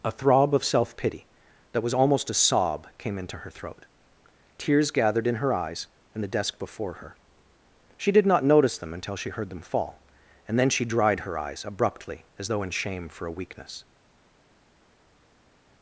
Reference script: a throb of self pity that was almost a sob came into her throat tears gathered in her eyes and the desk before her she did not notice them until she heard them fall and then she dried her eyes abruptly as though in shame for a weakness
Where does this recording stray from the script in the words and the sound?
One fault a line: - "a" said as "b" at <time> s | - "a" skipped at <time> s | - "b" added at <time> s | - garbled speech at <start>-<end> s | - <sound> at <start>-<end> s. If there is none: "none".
none